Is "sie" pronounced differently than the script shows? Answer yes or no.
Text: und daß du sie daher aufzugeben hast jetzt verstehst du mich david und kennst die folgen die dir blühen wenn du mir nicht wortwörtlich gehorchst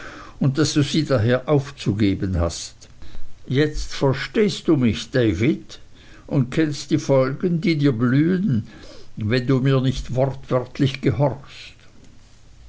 no